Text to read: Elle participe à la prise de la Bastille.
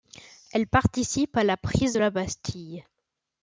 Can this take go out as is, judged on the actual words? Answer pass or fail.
pass